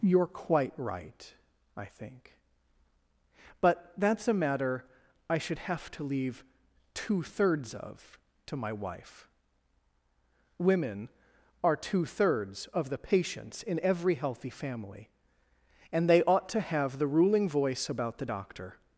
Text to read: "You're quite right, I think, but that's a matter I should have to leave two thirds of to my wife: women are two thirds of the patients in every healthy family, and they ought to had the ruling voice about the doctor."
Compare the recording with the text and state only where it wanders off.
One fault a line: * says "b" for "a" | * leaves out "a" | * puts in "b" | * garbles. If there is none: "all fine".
* says "have" for "had"